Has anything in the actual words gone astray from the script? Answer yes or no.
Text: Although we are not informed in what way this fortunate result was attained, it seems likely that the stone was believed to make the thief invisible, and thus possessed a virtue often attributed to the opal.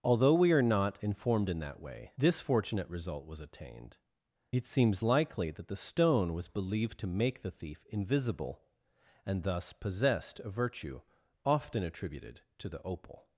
yes